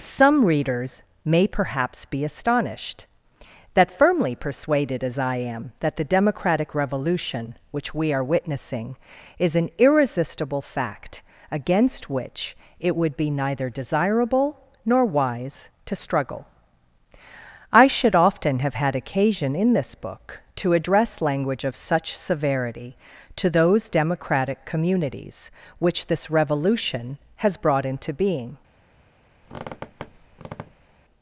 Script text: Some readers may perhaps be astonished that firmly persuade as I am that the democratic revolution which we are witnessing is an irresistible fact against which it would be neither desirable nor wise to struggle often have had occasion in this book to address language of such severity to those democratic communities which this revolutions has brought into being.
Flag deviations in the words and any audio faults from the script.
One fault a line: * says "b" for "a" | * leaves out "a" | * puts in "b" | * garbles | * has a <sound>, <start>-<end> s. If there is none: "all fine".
* says "persuaded" for "persuade"
* puts in "I should"
* says "revolution" for "revolutions"
* has a squeak, 29.4-30.9 s